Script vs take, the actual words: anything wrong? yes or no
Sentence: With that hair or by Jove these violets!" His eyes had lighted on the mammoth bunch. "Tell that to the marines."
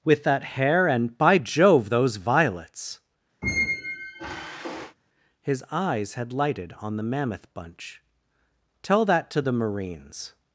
yes